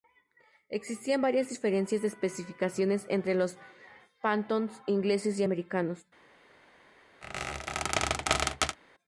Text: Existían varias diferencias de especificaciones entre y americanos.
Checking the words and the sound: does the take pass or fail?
fail